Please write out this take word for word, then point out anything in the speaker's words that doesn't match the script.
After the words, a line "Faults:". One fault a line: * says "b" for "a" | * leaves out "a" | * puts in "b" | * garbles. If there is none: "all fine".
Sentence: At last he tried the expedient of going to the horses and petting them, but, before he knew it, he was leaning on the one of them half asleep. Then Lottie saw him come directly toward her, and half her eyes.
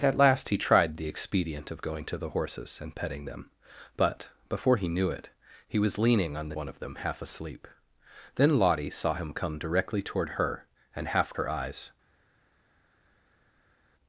At last he tried the expedient of going to the horses and petting them, but, before he knew it, he was leaning on the one of them half asleep. Then Lottie saw him come directly toward her, and half her eyes.
Faults:
all fine